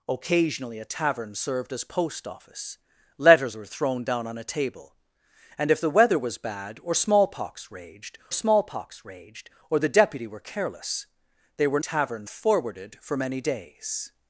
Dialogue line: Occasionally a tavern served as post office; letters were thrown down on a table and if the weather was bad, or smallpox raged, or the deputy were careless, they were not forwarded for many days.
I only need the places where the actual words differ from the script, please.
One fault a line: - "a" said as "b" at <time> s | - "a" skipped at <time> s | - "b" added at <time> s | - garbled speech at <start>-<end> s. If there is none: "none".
- "smallpox raged" added at 8.3 s
- "not" said as "tavern" at 11.8 s